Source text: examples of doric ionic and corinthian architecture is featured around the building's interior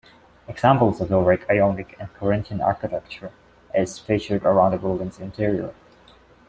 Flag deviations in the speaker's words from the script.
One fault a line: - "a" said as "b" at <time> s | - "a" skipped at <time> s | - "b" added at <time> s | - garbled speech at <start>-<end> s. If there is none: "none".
none